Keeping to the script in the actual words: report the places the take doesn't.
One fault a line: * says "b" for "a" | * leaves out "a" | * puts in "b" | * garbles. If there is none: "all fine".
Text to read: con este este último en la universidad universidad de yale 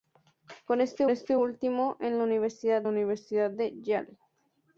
all fine